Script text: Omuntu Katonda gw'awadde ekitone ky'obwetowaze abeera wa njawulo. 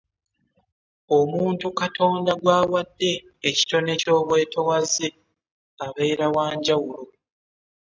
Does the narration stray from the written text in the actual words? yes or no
no